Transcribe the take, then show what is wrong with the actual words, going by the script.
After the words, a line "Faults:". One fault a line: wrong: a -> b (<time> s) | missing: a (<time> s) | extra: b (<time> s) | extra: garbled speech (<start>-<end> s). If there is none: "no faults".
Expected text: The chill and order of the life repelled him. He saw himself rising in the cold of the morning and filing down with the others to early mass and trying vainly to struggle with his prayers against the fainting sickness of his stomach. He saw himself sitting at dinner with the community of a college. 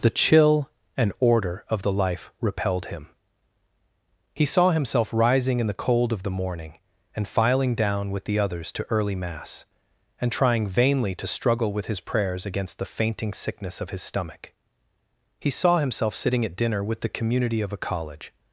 The chill and order of the life repelled him. He saw himself rising in the cold of the morning and filing down with the others to early mass and trying vainly to struggle with his prayers against the fainting sickness of his stomach. He saw himself sitting at dinner with the community of a college.
Faults:
no faults